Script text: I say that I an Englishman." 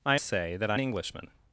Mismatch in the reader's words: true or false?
false